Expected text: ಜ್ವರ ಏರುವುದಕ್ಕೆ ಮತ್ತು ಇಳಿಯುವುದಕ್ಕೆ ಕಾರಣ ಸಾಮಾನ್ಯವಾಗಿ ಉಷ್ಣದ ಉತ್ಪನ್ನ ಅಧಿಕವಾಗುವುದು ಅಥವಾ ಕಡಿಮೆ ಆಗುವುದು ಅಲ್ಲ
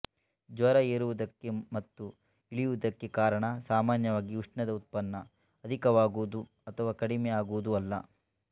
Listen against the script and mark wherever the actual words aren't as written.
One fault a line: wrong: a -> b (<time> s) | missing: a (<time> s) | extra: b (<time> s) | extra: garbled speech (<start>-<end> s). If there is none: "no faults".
no faults